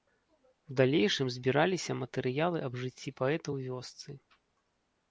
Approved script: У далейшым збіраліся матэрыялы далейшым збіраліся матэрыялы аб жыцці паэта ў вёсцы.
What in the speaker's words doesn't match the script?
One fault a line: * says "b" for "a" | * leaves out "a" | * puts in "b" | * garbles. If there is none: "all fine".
* leaves out "далейшым збіраліся матэрыялы"